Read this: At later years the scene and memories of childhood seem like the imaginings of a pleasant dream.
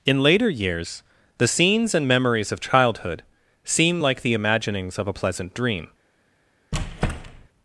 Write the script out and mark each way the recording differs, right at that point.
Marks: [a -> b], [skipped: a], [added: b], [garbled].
[At -> In] later years the [scene -> scenes] and memories of childhood seem like the imaginings of a pleasant dream.